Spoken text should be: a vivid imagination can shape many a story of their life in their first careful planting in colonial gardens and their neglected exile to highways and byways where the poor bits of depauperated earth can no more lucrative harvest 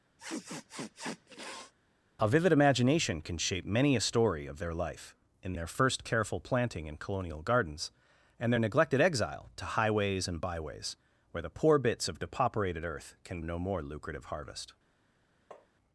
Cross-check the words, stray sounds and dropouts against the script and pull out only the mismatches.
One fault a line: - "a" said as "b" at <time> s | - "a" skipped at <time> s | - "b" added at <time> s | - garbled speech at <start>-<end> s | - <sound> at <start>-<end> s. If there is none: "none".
- sniff at 0.2-1.7 s
- tap at 15.5-15.7 s